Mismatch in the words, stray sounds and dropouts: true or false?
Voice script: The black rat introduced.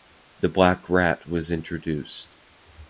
true